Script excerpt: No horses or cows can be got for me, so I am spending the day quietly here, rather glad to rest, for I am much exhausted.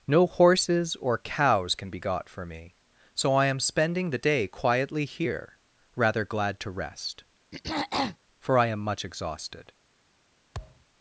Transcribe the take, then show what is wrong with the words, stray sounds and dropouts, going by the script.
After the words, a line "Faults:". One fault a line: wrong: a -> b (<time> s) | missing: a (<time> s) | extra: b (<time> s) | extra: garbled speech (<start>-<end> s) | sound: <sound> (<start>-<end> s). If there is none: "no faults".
No horses or cows can be got for me, so I am spending the day quietly here, rather glad to rest, for I am much exhausted.
Faults:
sound: throat clearing (7.5-8.2 s)
sound: thud (10.5-10.9 s)